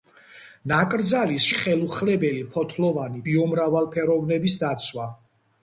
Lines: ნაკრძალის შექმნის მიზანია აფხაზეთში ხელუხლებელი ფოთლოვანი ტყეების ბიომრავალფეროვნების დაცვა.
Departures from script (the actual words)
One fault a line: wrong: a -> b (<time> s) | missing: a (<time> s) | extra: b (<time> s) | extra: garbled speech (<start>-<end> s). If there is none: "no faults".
missing: შექმნის მიზანია აფხაზეთში (1.4 s)
missing: ტყეების (3.2 s)